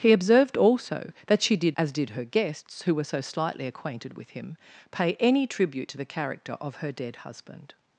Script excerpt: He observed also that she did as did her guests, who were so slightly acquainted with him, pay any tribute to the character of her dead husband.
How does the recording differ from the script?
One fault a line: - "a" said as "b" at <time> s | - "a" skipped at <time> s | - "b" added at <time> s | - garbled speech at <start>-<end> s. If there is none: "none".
none